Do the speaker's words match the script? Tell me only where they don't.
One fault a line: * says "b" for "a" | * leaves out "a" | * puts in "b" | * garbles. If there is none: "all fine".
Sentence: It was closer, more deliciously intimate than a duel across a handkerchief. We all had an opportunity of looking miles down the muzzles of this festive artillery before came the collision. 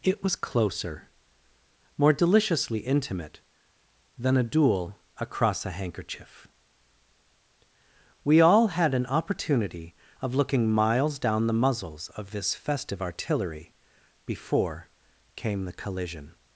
all fine